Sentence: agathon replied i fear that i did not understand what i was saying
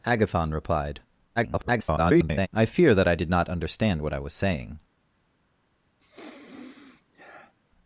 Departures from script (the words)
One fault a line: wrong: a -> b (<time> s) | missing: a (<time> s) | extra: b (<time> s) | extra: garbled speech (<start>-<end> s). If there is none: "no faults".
extra: garbled speech (1.4-2.5 s)